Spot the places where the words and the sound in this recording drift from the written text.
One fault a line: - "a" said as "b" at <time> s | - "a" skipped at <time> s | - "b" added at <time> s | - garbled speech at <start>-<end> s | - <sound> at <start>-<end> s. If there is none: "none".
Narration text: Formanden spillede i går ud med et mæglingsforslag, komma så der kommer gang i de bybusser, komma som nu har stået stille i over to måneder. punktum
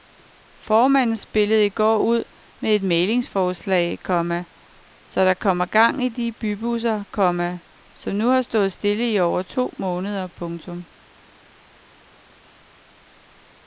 none